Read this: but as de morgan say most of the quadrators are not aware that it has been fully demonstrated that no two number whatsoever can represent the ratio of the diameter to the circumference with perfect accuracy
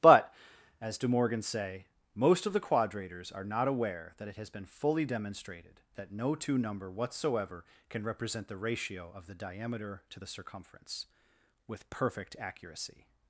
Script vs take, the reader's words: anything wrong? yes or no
no